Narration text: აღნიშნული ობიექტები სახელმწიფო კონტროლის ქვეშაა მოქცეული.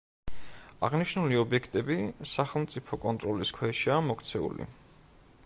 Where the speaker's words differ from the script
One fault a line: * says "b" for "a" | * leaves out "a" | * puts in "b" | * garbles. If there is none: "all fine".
all fine